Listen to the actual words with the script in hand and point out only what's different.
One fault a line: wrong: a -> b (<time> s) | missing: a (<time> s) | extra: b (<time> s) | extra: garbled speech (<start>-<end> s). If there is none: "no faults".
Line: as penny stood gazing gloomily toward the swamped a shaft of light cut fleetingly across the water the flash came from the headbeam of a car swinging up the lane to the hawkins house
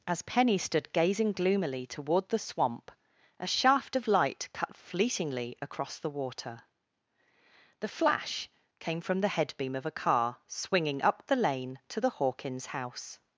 wrong: swamped -> swamp (2.4 s)